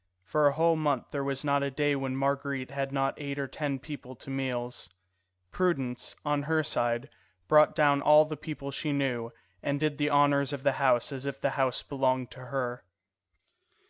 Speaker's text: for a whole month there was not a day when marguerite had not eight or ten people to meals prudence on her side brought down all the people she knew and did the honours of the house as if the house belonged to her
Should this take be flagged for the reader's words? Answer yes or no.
no